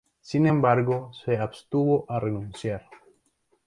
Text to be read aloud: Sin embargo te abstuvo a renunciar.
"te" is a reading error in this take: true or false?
true